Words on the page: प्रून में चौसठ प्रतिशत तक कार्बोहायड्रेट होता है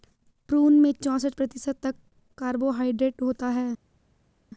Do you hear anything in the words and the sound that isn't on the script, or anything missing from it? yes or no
no